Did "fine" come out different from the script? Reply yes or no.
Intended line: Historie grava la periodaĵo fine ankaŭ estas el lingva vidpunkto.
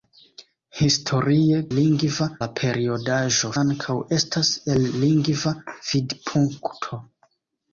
yes